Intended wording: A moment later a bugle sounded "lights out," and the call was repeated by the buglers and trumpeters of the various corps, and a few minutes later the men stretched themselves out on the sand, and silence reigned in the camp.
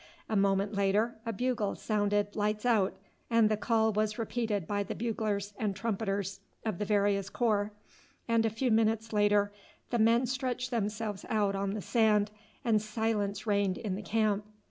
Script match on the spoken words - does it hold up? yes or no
yes